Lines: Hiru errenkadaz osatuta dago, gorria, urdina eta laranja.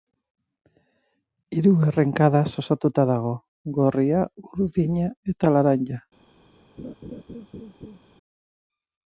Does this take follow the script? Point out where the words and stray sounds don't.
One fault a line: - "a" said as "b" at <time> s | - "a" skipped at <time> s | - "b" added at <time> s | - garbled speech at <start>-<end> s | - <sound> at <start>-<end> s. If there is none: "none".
- laugh at 6.8-8.0 s